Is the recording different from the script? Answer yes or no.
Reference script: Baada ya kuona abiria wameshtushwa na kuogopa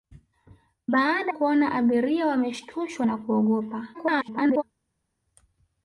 yes